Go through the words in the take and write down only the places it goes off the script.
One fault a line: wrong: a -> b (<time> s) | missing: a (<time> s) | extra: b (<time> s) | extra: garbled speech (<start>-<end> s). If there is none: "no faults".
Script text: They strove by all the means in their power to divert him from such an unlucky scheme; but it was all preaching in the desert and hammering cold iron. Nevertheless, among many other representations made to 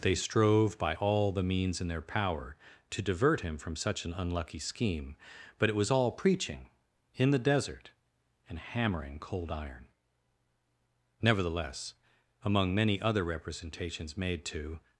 no faults